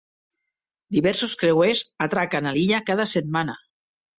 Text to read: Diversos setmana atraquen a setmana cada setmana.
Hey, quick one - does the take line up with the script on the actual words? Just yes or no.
no